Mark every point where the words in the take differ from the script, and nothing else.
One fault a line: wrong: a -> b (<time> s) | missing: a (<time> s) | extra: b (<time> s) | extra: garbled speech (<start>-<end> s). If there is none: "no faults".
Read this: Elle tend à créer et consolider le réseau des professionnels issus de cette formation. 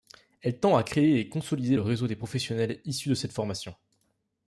no faults